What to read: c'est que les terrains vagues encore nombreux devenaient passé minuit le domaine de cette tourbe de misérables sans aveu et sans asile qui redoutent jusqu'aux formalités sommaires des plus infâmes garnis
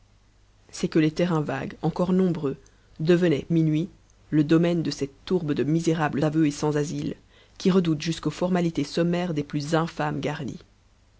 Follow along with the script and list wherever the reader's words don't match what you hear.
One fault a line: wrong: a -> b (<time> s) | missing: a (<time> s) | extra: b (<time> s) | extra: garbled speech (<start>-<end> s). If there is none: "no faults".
missing: passé (3.5 s)
missing: sans (6.2 s)